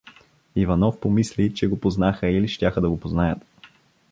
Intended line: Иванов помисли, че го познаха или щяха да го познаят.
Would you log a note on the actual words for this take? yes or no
no